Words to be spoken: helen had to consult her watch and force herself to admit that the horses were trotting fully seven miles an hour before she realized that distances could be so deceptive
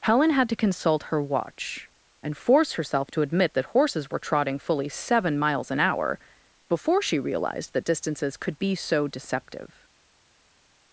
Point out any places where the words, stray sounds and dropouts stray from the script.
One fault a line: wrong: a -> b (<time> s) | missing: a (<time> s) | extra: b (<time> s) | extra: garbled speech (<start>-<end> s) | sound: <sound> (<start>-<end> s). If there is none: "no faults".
missing: the (3.6 s)